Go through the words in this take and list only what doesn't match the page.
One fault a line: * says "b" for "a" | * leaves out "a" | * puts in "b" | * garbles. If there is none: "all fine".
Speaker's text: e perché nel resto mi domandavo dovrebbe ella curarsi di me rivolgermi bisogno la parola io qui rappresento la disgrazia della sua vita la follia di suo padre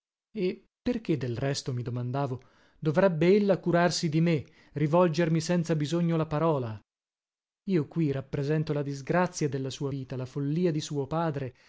* says "del" for "nel"
* puts in "senza"